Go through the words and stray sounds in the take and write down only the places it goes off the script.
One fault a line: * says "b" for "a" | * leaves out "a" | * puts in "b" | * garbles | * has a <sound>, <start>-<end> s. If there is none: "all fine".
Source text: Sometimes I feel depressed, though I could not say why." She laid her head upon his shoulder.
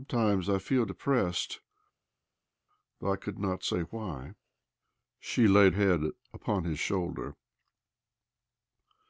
* leaves out "her"